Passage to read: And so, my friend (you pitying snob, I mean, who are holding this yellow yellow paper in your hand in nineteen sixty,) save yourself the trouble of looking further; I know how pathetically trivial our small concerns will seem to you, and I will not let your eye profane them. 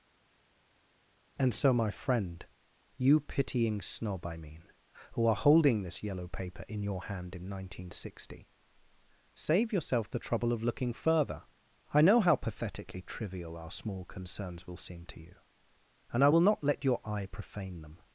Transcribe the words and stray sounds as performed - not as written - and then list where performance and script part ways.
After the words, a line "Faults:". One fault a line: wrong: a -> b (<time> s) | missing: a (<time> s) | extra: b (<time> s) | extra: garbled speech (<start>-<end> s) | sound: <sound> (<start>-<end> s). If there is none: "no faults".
And so, my friend (you pitying snob, I mean, who are holding this yellow paper in your hand in nineteen sixty,) save yourself the trouble of looking further; I know how pathetically trivial our small concerns will seem to you, and I will not let your eye profane them.
Faults:
missing: yellow (6.3 s)